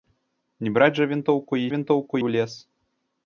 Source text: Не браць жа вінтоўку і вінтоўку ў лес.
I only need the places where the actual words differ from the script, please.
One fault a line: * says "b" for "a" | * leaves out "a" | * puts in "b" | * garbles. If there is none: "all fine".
all fine